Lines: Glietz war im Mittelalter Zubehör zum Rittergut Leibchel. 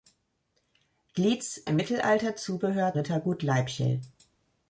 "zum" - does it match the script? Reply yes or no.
no